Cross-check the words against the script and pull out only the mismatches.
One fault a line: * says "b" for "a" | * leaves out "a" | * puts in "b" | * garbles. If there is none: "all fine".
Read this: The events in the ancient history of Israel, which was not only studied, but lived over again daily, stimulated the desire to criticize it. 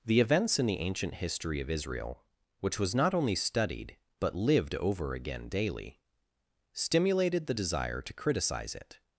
all fine